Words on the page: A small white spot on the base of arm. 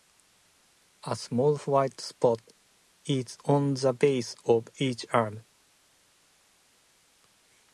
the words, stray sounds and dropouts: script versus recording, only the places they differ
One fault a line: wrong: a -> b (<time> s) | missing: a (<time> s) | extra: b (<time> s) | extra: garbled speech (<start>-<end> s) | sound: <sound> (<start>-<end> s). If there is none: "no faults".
extra: is (3.0 s)
extra: each (4.8 s)